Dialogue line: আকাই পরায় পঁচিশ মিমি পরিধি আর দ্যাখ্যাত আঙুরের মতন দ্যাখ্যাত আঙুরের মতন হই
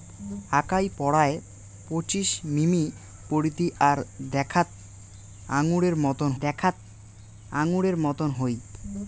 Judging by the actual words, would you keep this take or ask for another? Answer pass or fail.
pass